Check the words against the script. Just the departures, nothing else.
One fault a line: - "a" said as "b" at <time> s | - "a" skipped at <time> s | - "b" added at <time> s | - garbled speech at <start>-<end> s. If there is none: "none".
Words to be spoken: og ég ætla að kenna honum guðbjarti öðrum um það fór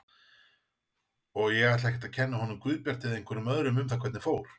- "ekkert" added at 1.9 s
- "eða einhverjum" added at 3.1 s
- "hvernig" added at 4.1 s